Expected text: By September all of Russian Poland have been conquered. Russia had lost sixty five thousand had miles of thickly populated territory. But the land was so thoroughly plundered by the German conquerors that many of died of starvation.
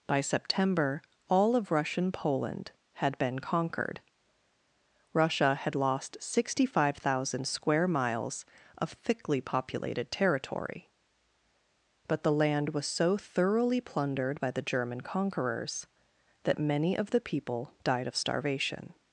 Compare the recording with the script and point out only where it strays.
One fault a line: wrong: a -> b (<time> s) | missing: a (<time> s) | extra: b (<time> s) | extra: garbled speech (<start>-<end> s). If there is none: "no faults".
wrong: have -> had (2.9 s)
wrong: had -> square (7.5 s)
extra: the people (17.1 s)